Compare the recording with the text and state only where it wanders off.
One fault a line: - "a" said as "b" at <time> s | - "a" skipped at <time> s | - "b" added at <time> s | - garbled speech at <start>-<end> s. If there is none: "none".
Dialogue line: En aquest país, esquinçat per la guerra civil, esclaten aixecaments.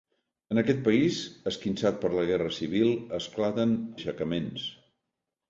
none